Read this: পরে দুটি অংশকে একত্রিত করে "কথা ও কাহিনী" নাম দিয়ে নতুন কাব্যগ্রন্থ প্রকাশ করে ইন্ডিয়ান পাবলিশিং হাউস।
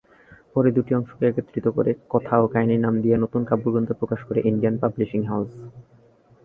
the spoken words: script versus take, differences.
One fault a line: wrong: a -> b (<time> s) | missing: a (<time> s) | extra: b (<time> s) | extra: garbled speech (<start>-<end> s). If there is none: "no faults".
no faults